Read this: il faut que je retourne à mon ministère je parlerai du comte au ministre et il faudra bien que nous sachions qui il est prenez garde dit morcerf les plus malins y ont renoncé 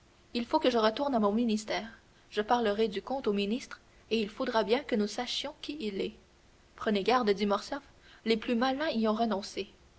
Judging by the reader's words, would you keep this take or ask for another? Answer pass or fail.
pass